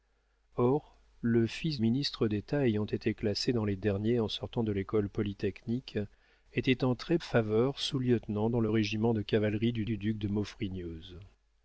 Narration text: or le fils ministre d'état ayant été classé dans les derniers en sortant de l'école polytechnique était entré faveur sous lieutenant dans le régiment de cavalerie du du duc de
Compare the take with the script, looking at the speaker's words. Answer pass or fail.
pass